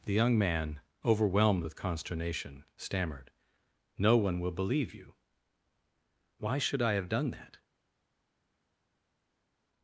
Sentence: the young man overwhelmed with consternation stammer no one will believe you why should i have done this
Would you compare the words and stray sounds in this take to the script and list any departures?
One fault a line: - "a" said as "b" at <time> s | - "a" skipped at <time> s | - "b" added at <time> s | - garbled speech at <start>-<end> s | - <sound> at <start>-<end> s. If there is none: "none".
- "stammer" said as "stammered" at 2.8 s
- "this" said as "that" at 7.3 s